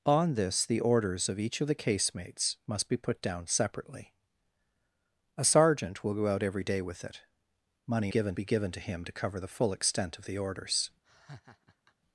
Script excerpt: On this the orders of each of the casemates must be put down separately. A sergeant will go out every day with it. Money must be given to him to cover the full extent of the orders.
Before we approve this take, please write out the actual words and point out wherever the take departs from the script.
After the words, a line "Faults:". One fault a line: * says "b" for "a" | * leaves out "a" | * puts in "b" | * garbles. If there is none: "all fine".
On this the orders of each of the casemates must be put down separately. A sergeant will go out every day with it. Money given be given to him to cover the full extent of the orders.
Faults:
* says "given" for "must"